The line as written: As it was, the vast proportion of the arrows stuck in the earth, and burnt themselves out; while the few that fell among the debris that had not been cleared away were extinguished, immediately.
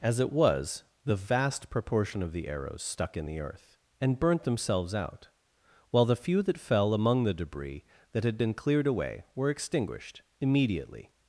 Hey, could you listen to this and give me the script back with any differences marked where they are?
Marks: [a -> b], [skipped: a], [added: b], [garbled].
As it was, the vast proportion of the arrows stuck in the earth, and burnt themselves out; while the few that fell among the debris that had [skipped: not] been cleared away were extinguished, immediately.